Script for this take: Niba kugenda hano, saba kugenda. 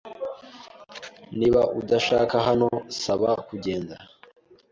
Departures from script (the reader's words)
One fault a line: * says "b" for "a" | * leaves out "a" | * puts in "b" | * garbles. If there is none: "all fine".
* says "udashaka" for "kugenda"